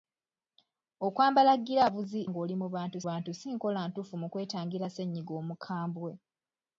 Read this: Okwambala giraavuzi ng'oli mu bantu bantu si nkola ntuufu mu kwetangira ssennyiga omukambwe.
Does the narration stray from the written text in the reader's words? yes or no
no